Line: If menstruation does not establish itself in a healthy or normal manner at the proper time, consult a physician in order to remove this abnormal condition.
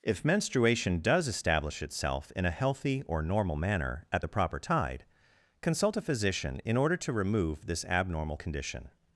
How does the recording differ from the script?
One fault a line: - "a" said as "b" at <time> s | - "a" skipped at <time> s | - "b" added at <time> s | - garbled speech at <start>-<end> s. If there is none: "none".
- "not" skipped at 1.3 s
- "time" said as "tide" at 4.6 s